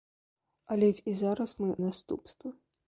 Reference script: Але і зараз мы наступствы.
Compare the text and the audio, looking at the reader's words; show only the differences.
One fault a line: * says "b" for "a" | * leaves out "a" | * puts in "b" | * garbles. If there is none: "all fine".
all fine